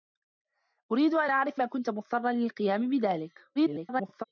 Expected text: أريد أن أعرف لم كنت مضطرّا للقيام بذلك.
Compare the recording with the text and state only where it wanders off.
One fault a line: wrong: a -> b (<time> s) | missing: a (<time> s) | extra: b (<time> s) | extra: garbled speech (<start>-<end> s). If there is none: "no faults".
missing: لم (1.6 s)
extra: garbled speech (3.6-4.2 s)